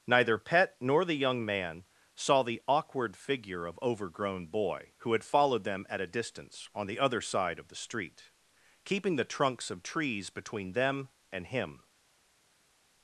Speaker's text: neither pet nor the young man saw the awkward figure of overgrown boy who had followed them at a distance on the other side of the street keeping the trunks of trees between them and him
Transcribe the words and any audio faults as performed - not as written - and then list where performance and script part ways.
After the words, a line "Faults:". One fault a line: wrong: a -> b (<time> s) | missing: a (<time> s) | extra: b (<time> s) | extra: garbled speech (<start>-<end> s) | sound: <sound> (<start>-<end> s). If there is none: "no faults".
neither pet nor the young man saw the awkward figure of overgrown boy who had followed them at a distance on the other side of the street keeping the trunks of trees between them and him
Faults:
no faults